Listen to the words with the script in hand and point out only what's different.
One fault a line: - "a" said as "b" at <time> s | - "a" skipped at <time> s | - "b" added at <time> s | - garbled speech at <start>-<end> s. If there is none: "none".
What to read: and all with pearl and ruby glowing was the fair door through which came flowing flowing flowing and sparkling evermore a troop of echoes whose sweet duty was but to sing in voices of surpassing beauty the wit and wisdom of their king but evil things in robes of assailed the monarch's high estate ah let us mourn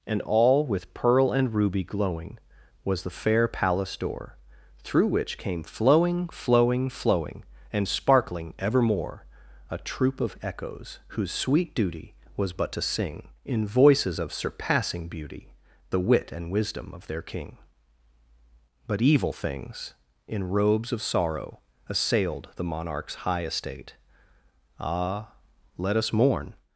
- "palace" added at 3.5 s
- "sorrow" added at 21.0 s